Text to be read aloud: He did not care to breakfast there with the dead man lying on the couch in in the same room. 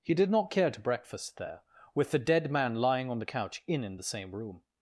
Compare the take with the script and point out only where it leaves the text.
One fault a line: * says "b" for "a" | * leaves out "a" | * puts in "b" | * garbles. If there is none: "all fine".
all fine